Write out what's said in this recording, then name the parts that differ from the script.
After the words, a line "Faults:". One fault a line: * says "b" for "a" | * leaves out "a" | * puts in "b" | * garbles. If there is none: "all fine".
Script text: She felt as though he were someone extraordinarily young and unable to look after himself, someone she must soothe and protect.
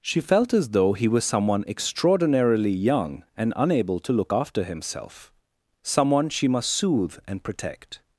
She felt as though he was someone extraordinarily young and unable to look after himself, someone she must soothe and protect.
Faults:
* says "was" for "were"